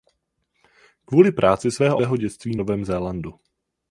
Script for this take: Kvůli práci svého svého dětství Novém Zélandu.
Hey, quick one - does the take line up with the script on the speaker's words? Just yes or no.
yes